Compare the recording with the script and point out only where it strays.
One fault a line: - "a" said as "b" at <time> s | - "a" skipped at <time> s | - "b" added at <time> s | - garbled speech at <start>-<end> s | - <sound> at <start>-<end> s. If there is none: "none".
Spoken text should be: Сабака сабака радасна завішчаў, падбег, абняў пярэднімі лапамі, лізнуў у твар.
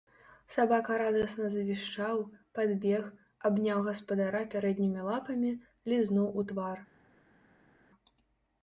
- "сабака" skipped at 0.9 s
- "гаспадара" added at 3.9 s